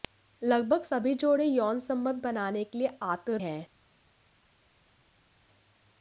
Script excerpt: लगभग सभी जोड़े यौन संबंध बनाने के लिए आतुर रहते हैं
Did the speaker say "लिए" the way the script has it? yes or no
yes